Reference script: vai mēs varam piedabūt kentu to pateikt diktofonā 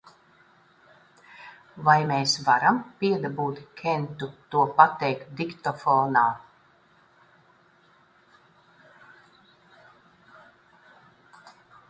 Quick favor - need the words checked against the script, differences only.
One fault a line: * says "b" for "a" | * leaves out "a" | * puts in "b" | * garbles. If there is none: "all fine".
all fine